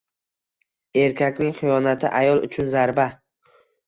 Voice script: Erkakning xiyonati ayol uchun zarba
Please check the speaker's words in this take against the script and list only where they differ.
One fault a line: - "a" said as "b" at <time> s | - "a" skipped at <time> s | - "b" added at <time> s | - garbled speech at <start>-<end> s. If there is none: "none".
none